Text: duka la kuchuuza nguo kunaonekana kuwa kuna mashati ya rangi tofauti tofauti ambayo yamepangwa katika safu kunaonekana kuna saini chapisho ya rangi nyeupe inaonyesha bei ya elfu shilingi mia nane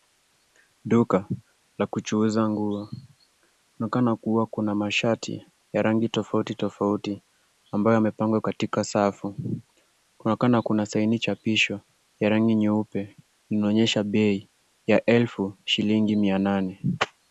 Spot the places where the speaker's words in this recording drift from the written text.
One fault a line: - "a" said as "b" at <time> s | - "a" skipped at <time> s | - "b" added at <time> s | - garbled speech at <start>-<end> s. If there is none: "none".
none